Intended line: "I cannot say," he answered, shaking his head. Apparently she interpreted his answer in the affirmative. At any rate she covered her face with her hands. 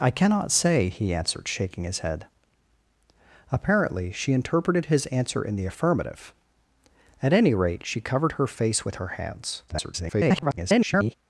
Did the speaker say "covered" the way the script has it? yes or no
yes